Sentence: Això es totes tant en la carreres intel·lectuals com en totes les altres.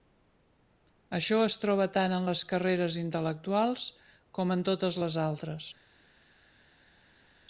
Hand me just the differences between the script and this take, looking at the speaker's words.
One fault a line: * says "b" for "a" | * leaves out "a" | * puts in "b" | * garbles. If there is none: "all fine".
* says "troba" for "totes"
* says "les" for "la"